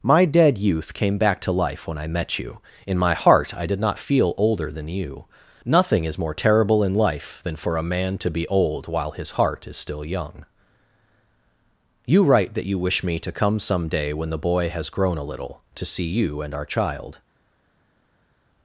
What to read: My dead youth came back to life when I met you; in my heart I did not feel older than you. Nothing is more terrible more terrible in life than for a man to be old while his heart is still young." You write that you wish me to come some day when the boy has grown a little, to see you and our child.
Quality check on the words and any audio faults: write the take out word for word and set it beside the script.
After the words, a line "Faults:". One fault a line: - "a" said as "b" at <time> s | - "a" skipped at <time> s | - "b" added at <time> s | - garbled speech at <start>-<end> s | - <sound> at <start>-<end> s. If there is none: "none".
My dead youth came back to life when I met you; in my heart I did not feel older than you. Nothing is more terrible in life than for a man to be old while his heart is still young." You write that you wish me to come some day when the boy has grown a little, to see you and our child.
Faults:
- "more terrible" skipped at 6.8 s